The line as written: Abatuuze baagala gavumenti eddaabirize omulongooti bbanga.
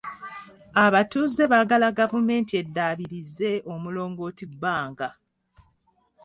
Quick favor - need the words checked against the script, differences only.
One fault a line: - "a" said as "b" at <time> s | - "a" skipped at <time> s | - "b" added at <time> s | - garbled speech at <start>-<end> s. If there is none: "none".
none